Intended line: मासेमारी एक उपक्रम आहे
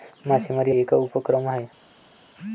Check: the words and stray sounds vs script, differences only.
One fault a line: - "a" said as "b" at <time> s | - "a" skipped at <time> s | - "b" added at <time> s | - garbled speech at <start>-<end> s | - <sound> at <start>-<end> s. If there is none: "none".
none